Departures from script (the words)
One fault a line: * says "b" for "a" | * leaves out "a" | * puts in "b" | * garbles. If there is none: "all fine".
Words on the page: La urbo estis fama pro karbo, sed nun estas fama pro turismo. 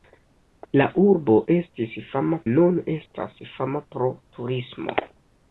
* leaves out "pro karbo sed"